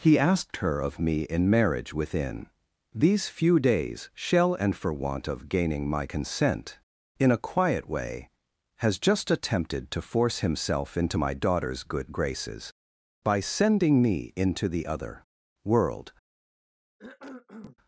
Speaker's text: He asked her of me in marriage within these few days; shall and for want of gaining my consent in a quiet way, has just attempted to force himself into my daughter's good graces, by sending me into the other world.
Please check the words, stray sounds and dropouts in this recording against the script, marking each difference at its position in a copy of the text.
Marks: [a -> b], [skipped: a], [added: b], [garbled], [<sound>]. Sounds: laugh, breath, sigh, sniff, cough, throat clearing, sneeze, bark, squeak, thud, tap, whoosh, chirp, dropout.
He asked her of me in marriage within these few days; shall and for want of gaining my consent in a quiet way, has just attempted to force himself into my daughter's good graces, by sending me into the other world. [cough]